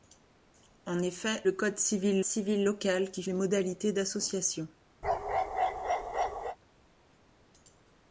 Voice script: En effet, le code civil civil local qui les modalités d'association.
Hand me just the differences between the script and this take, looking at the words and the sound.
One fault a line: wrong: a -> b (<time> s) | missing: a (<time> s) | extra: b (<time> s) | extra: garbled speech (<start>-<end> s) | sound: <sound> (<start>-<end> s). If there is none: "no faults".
sound: bark (5.0-6.6 s)